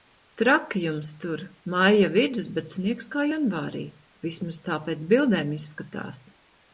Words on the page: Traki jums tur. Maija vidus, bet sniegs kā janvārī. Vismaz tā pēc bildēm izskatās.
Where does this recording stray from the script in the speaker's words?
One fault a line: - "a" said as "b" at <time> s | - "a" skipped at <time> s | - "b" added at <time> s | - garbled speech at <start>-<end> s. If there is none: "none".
none